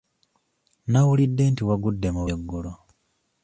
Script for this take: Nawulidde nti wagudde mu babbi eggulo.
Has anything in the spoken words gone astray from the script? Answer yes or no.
yes